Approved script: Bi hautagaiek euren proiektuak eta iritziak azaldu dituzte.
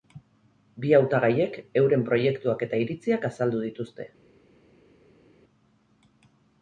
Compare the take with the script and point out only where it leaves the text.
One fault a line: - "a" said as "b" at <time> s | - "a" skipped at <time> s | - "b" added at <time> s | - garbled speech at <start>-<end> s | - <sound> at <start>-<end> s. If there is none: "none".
none